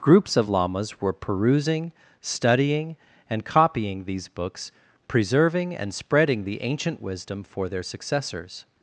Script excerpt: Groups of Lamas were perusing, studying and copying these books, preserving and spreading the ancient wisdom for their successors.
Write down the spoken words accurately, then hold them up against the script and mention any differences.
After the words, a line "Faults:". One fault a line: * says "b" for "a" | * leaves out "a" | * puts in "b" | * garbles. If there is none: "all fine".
Groups of Lamas were perusing, studying and copying these books, preserving and spreading the ancient wisdom for their successors.
Faults:
all fine